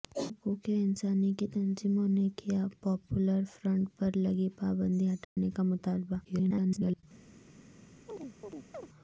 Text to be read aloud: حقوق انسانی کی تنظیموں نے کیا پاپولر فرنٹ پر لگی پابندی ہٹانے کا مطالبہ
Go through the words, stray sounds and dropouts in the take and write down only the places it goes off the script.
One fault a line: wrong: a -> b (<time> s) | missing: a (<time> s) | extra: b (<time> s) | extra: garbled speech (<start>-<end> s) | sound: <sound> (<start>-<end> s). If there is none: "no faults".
sound: dropout (5.2-5.4 s)
extra: garbled speech (6.2-7.0 s)
sound: chirp (8.1-8.9 s)